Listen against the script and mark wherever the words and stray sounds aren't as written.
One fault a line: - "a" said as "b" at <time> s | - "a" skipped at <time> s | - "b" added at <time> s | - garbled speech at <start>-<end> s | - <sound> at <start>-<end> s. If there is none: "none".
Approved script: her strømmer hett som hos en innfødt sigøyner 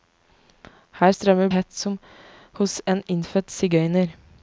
none